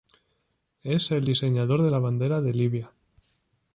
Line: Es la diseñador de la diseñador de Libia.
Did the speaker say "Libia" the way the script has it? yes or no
yes